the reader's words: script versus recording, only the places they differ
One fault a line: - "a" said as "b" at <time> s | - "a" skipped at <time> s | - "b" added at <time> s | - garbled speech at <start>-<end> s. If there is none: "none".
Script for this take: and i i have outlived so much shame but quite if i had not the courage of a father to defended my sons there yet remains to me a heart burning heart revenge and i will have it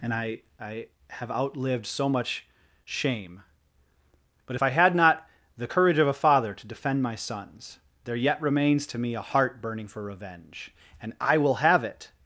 - "quite" skipped at 4.5 s
- "defended" said as "defend" at 6.7 s
- "heart" said as "for" at 9.9 s